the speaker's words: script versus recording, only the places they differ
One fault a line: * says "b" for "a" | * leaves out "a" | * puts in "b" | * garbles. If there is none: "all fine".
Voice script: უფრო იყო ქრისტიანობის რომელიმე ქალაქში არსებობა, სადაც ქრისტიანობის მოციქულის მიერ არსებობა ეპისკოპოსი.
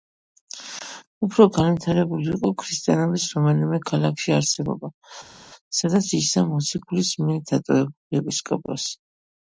* puts in "განვითარებული"
* says "იჯდა" for "ქრისტიანობის"
* says "დატოვებული" for "არსებობა"